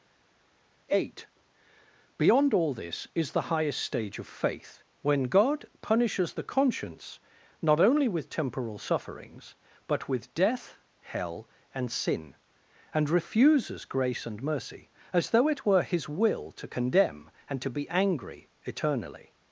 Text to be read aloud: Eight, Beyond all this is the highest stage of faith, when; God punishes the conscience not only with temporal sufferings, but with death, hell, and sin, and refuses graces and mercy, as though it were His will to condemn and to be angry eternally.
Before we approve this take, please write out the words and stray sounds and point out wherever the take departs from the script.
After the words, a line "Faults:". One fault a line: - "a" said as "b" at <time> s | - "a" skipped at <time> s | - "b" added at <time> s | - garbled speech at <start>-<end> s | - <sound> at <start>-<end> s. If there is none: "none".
Eight, Beyond all this is the highest stage of faith, when; God punishes the conscience not only with temporal sufferings, but with death, hell, and sin, and refuses grace and mercy, as though it were His will to condemn and to be angry eternally.
Faults:
- "graces" said as "grace" at 13.8 s